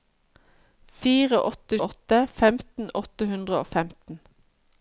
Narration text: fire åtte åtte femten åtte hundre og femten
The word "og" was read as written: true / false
true